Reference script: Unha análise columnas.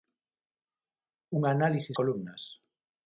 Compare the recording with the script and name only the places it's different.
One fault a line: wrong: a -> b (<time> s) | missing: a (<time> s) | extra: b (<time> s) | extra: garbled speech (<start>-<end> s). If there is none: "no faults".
no faults